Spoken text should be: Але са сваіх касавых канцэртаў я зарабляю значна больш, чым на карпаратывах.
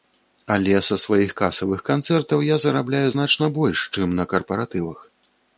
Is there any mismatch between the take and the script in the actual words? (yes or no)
no